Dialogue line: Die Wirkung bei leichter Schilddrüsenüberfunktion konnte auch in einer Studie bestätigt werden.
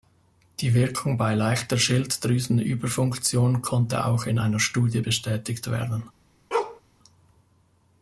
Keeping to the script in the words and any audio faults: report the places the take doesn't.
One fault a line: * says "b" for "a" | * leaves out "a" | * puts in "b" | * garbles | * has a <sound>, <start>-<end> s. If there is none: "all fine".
* has a bark, 6.5-6.8 s